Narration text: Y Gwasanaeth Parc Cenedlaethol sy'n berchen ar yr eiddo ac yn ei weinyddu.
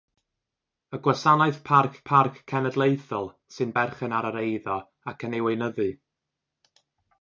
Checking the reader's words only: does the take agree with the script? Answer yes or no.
no